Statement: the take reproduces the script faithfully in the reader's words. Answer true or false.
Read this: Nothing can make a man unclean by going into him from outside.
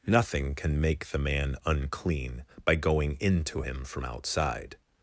false